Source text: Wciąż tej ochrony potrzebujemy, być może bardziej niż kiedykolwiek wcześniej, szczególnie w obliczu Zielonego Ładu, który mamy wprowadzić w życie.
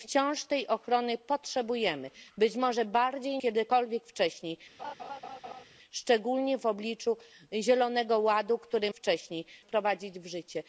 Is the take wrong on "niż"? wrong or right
wrong